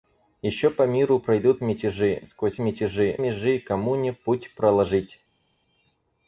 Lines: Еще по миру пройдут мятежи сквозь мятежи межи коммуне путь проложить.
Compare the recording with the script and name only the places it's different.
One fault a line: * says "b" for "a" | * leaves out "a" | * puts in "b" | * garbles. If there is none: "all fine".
all fine